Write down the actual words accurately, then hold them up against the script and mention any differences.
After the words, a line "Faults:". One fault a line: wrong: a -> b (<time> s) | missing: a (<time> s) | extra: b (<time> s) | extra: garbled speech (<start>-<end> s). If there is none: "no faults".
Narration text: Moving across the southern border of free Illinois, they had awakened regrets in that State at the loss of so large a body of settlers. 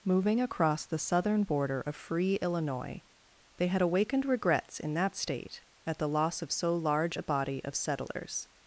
Moving across the southern border of free Illinois, they had awakened regrets in that State at the loss of so large a body of settlers.
Faults:
no faults